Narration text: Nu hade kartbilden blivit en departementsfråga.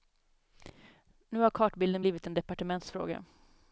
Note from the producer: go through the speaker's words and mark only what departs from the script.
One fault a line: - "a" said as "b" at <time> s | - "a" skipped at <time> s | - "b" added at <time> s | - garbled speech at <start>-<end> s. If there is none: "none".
- "hade" said as "har" at 1.4 s